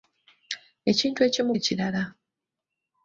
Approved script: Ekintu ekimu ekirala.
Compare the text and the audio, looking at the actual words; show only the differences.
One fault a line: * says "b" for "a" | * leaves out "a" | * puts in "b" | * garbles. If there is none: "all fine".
all fine